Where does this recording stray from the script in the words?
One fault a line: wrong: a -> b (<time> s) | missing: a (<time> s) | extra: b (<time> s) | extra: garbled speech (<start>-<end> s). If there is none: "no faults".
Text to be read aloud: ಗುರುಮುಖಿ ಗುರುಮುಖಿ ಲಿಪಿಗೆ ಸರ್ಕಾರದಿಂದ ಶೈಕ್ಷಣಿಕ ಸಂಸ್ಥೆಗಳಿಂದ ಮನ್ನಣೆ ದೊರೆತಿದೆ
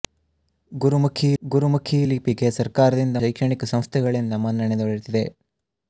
no faults